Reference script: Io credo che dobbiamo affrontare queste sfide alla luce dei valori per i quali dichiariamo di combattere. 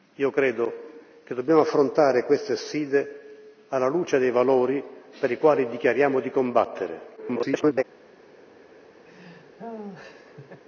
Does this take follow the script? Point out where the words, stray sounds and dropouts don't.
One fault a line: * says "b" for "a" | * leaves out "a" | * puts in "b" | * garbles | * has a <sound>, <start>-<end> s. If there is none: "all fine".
* garbles
* has a laugh, 9.1-10.6 s